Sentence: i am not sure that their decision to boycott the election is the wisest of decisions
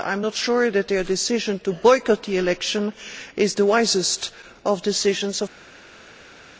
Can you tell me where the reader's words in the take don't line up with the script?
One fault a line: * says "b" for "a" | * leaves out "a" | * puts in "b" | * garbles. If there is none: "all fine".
all fine